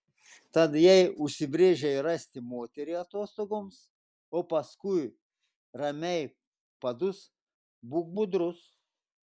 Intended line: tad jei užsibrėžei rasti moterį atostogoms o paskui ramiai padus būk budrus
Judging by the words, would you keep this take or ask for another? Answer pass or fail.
pass